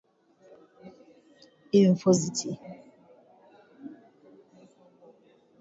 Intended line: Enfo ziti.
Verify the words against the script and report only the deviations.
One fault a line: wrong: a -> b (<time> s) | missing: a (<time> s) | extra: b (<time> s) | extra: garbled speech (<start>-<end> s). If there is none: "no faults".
no faults